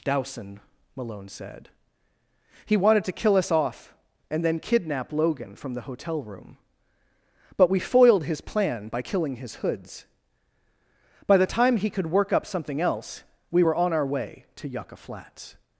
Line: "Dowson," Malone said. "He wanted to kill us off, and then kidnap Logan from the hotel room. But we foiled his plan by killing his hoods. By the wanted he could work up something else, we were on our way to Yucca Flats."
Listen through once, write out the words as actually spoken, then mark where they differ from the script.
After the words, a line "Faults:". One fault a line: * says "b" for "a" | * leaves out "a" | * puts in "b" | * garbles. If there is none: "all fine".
"Dowson," Malone said. "He wanted to kill us off, and then kidnap Logan from the hotel room. But we foiled his plan by killing his hoods. By the time he could work up something else, we were on our way to Yucca Flats."
Faults:
* says "time" for "wanted"